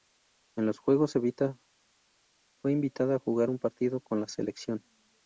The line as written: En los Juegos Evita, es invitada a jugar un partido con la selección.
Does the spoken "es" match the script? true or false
false